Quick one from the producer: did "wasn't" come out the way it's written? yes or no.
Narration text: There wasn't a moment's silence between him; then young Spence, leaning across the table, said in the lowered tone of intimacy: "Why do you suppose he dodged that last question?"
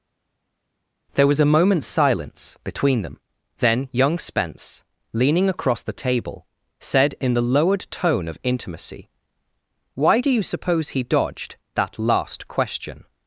no